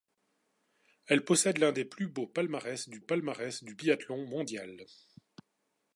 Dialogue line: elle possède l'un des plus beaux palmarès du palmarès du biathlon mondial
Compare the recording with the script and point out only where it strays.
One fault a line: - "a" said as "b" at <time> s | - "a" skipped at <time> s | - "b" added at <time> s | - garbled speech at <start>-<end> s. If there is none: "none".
none